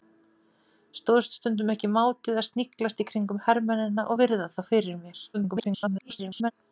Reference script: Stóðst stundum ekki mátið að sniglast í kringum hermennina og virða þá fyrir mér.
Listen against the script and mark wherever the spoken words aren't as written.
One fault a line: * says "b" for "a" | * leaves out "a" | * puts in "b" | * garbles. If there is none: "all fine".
* garbles